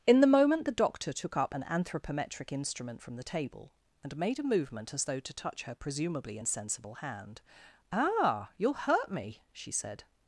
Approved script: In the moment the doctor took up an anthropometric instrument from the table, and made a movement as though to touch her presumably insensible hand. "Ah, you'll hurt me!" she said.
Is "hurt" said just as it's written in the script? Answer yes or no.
yes